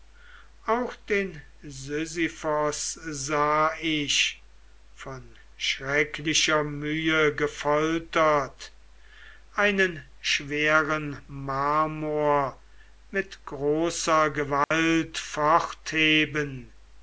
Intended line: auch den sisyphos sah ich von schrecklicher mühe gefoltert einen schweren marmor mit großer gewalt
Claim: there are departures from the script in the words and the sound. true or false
true